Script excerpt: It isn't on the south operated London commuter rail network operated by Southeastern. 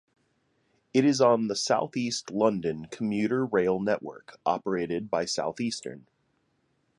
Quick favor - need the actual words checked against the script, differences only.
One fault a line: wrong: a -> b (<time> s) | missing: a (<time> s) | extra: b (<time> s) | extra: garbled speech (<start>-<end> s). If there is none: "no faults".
wrong: isn't -> is (1.1 s)
wrong: operated -> east (1.9 s)